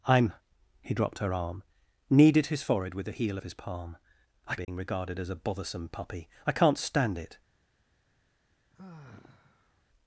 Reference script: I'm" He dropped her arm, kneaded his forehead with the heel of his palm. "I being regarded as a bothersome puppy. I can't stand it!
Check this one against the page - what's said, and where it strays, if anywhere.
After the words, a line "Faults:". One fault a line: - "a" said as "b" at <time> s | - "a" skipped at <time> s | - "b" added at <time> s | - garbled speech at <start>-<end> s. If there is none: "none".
I'm" He dropped her arm, kneaded his forehead with the heel of his palm. "I being regarded as a bothersome puppy. I can't stand it!
Faults:
none